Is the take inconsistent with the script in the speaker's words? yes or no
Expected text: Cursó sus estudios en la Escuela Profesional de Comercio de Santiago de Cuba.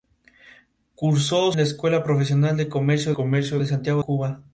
yes